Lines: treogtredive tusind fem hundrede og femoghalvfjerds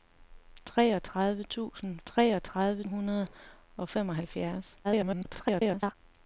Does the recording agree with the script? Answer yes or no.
no